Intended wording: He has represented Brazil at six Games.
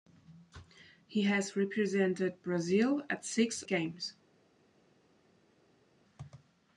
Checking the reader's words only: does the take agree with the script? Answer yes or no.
yes